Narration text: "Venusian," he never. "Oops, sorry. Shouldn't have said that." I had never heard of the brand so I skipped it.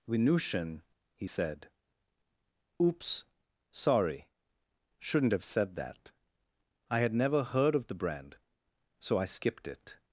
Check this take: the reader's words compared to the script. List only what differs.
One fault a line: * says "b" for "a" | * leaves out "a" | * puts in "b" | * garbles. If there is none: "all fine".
* says "said" for "never"